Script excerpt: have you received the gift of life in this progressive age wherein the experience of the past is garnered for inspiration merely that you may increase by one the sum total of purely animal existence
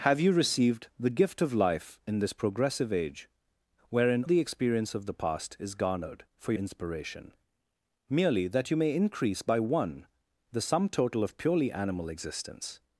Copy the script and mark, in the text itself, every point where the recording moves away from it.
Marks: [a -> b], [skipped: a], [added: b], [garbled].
have you received the gift of life in this progressive age wherein the experience of the past is garnered for inspiration merely that you may increase by one the sum total of purely animal existence